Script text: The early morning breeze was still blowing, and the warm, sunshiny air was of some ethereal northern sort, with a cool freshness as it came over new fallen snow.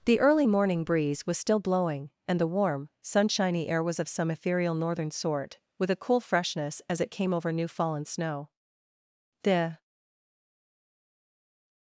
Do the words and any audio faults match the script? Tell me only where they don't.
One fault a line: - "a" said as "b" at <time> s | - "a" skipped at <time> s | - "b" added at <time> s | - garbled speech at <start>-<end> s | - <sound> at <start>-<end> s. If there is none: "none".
- "The" added at 9.4 s